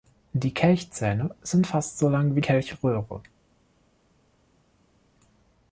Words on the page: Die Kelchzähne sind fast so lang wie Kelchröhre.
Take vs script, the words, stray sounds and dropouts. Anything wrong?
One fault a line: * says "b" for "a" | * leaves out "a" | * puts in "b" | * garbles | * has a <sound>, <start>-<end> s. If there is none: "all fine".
all fine